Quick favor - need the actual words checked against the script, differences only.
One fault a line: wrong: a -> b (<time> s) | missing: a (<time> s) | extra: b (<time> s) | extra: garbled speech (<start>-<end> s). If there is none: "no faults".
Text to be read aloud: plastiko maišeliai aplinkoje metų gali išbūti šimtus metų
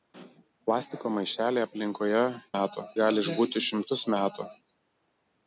no faults